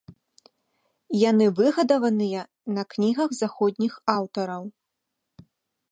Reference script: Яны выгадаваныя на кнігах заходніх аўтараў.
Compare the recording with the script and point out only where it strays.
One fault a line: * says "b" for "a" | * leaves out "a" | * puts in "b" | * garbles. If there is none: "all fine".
all fine